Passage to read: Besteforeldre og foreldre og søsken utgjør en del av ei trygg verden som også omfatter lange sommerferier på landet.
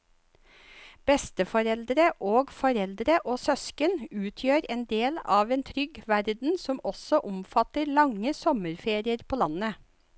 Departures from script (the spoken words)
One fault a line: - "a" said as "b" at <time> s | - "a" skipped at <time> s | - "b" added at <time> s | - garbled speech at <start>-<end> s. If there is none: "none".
- "ei" said as "en" at 5.6 s